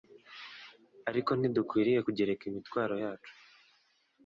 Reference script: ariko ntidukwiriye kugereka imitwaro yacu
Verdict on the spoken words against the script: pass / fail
pass